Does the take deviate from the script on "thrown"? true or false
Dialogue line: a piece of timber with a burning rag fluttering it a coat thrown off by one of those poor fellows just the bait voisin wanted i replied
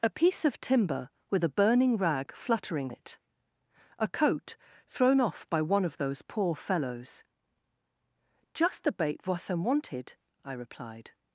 false